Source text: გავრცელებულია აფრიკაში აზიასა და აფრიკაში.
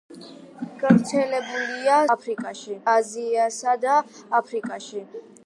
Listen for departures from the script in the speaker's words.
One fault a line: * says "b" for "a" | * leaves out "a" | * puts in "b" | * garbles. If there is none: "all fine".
all fine